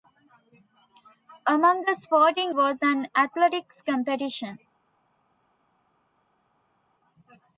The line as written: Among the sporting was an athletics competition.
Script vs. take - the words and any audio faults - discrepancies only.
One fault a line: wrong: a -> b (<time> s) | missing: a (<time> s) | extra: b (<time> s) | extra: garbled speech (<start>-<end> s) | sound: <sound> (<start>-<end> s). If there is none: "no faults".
no faults